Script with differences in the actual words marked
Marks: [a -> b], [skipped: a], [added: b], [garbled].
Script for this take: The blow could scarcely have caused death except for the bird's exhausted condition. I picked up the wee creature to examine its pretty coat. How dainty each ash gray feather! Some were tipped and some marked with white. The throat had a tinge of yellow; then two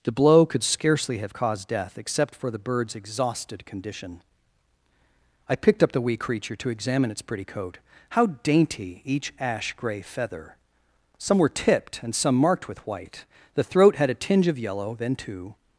The blow could scarcely have caused death except for the bird's exhausted condition. I picked up the wee creature to examine its pretty coat. How dainty each ash gray feather! Some were tipped and some marked with white. The throat had a tinge of yellow; then two